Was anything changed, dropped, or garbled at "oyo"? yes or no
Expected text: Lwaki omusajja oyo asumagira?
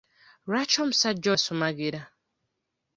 yes